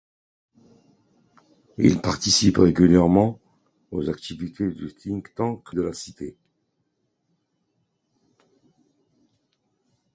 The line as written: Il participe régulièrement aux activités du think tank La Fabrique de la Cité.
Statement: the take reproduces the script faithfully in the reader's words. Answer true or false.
false